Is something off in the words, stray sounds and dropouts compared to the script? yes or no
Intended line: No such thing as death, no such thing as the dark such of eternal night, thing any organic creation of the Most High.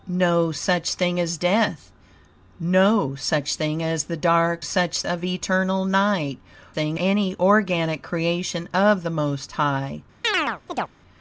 yes